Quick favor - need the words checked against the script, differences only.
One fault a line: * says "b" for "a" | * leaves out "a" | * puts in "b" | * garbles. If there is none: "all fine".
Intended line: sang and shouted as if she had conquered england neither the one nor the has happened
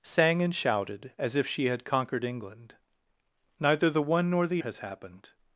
all fine